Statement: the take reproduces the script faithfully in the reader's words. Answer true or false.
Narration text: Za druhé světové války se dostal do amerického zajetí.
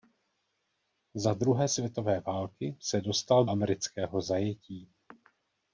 false